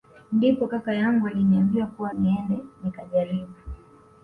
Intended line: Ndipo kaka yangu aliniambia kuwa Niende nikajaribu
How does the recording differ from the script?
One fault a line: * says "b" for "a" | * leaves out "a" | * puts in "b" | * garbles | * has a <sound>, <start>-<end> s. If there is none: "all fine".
all fine